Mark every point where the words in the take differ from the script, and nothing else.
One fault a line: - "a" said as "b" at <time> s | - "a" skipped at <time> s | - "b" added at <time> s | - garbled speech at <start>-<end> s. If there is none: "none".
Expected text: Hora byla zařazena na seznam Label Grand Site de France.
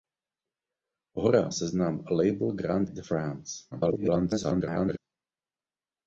- "byla zařazena na" skipped at 1.5 s
- "Site" skipped at 2.9 s
- garbled speech at 3.7-5.0 s